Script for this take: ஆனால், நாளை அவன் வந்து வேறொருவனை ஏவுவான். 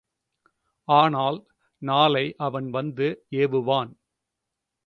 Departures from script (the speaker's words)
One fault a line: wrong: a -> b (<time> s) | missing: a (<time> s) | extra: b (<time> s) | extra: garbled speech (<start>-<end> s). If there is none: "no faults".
missing: வேறொருவனை (3.1 s)